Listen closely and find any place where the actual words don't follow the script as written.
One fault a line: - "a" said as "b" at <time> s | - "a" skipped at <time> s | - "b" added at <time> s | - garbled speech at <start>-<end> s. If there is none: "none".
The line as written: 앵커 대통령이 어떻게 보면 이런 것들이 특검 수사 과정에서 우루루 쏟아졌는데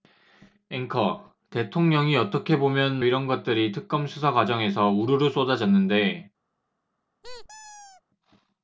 none